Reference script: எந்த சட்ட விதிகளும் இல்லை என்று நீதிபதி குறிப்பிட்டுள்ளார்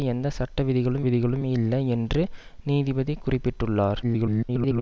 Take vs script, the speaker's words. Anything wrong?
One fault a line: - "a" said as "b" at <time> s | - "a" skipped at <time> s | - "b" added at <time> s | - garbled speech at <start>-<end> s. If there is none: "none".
- "விதிகளும்" added at 1.0 s
- garbled speech at 4.0-4.8 s